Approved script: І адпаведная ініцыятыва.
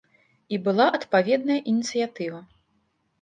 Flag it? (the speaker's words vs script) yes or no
yes